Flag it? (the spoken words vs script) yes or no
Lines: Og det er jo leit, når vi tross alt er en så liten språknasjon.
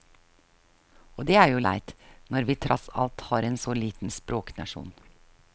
no